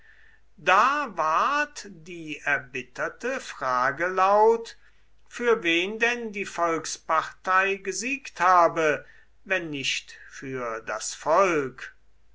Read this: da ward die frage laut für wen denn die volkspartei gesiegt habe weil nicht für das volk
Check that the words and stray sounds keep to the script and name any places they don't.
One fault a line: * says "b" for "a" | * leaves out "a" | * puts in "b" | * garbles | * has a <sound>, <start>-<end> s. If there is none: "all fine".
* puts in "erbitterte"
* says "wenn" for "weil"